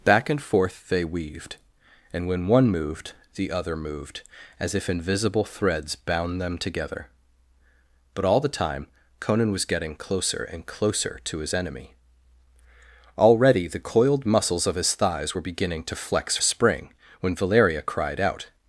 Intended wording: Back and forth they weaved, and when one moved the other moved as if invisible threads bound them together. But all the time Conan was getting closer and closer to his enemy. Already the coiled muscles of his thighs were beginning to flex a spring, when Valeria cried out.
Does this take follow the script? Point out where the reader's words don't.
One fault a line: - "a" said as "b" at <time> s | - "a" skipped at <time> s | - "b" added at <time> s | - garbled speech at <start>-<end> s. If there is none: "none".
none